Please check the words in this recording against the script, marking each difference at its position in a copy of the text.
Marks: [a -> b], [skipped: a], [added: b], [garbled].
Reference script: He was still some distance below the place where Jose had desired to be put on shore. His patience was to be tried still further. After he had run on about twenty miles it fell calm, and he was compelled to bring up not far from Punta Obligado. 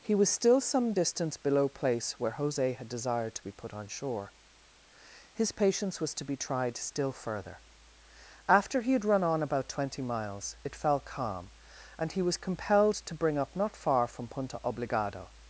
He was still some distance below [skipped: the] place where Jose had desired to be put on shore. His patience was to be tried still further. After he had run on about twenty miles it fell calm, and he was compelled to bring up not far from Punta Obligado.